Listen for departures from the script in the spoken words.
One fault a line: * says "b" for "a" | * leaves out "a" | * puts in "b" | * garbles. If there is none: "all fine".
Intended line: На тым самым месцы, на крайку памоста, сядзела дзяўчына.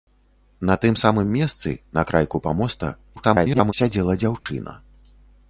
* garbles